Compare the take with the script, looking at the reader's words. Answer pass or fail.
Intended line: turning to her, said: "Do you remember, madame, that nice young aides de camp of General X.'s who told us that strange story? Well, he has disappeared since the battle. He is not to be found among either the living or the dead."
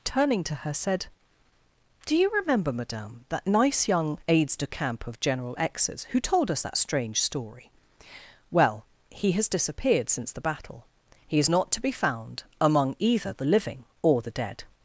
pass